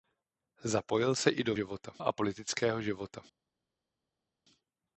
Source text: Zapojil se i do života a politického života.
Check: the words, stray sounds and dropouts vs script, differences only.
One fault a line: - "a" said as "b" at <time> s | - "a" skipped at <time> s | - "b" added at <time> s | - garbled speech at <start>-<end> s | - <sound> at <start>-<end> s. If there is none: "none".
none